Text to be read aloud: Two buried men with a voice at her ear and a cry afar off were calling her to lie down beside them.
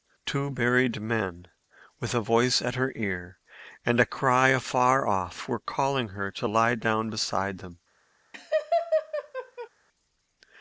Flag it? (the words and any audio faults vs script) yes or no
yes